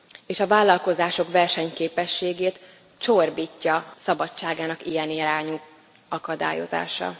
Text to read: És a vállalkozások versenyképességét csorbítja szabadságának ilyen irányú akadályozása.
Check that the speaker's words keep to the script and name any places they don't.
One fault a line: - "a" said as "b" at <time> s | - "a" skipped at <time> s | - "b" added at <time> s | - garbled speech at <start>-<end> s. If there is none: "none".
none